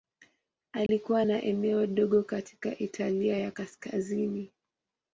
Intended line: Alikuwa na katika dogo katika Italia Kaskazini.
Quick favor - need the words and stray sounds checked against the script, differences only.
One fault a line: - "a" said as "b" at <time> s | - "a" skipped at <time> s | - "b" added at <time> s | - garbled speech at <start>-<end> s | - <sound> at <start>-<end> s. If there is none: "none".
- dropout at 0.9-0.9 s
- "katika" said as "eneo" at 1.4 s
- "ya" added at 3.4 s